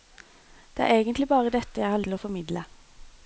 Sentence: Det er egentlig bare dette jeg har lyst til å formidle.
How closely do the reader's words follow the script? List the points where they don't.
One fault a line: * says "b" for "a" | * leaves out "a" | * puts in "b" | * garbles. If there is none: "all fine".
* leaves out "lyst"